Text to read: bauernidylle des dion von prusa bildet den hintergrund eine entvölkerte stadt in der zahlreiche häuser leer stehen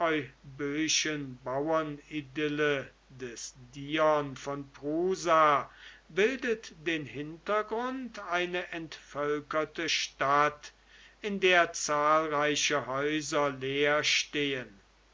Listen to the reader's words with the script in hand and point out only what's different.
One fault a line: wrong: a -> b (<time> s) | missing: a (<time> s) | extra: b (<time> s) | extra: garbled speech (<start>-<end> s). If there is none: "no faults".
no faults